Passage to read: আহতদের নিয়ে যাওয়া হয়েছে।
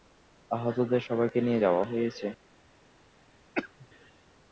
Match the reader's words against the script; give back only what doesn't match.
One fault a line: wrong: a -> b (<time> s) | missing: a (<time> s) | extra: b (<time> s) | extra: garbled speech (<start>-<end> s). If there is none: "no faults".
extra: সবাইকে (1.1 s)